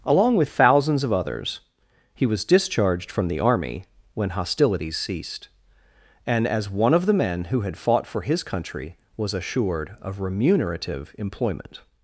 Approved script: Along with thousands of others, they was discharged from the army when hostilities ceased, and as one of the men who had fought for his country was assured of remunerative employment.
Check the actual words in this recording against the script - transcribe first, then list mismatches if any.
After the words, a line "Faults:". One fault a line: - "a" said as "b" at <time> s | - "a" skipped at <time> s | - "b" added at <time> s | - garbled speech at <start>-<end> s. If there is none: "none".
Along with thousands of others, he was discharged from the army when hostilities ceased, and as one of the men who had fought for his country was assured of remunerative employment.
Faults:
- "they" said as "he" at 2.1 s